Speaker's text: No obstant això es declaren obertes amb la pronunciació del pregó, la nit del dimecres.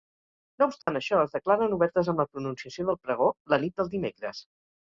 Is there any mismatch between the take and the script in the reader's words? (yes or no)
no